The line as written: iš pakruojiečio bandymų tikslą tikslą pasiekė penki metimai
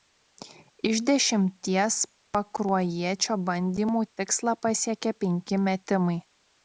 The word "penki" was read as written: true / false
true